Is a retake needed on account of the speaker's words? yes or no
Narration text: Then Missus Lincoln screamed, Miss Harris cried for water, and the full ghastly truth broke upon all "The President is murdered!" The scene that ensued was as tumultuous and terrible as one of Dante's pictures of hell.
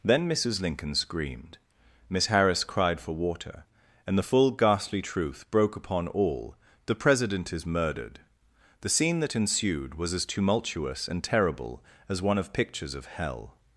yes